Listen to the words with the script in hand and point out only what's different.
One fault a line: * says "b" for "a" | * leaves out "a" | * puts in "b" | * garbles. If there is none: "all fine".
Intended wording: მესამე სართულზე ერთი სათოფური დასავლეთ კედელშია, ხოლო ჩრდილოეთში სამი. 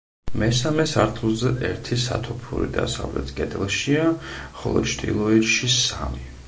all fine